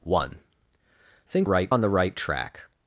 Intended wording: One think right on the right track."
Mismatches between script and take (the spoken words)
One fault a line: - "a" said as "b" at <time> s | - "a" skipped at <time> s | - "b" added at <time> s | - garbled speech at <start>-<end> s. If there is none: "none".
none